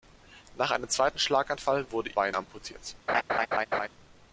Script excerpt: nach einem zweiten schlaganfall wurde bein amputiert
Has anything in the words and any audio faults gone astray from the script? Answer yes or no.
yes